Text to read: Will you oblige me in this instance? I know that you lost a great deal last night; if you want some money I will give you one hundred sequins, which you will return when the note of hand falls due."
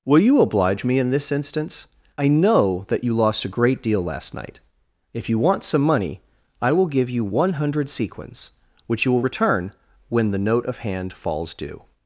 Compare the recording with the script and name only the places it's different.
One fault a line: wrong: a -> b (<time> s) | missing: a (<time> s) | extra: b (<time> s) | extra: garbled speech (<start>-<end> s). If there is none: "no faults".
no faults